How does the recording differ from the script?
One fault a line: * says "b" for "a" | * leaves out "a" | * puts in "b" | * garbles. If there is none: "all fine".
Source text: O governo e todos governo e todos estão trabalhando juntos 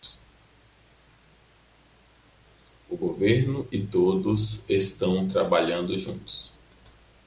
* leaves out "governo e todos"